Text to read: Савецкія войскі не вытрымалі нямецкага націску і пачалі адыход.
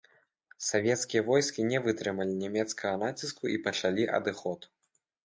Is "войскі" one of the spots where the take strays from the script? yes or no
no